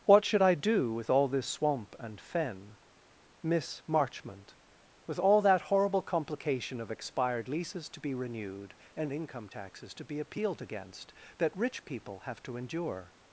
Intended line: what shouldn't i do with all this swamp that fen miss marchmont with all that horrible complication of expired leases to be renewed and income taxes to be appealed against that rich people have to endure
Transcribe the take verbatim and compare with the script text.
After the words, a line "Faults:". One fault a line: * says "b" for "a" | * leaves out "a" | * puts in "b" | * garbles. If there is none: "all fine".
what should i do with all this swamp and fen miss marchmont with all that horrible complication of expired leases to be renewed and income taxes to be appealed against that rich people have to endure
Faults:
* says "should" for "shouldn't"
* says "and" for "that"